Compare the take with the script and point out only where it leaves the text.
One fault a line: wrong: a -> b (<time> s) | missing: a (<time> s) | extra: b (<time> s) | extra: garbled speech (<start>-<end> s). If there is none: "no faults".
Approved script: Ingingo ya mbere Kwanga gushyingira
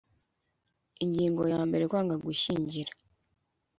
no faults